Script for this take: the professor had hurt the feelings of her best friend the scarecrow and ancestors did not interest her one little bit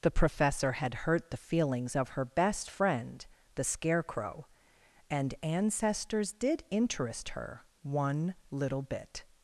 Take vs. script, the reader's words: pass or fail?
fail